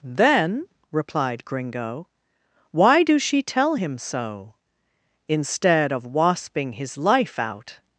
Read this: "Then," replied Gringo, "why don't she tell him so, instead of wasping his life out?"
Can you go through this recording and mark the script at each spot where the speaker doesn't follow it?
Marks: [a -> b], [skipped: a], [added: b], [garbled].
"Then," replied Gringo, "why [don't -> do] she tell him so, instead of wasping his life out?"